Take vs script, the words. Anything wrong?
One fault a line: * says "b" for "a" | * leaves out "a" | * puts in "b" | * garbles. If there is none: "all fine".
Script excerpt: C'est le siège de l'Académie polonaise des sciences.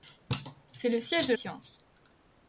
* leaves out "l'Académie polonaise des"